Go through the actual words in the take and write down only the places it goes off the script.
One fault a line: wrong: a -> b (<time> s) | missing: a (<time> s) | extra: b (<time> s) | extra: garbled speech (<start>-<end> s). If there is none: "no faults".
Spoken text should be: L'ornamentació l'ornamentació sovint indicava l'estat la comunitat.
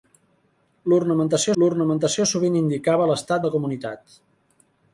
no faults